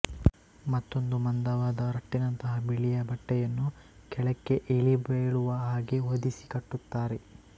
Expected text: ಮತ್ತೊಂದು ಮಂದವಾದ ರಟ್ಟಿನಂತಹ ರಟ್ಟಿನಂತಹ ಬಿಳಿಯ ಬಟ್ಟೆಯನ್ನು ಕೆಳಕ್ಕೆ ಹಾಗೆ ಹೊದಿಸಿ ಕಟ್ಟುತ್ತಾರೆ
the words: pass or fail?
fail